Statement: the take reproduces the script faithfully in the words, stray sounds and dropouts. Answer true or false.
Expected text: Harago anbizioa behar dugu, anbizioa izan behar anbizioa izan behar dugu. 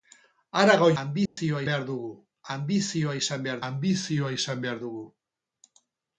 false